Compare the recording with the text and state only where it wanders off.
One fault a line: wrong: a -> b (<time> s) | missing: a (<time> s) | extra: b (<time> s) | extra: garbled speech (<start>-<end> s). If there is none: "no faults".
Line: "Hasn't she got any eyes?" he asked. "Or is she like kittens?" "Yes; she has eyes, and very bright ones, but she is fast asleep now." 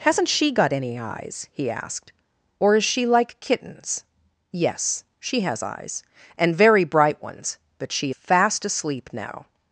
missing: is (8.1 s)